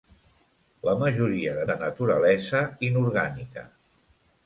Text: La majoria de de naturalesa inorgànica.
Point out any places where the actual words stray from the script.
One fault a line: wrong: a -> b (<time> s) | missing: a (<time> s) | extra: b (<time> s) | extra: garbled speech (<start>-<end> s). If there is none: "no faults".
no faults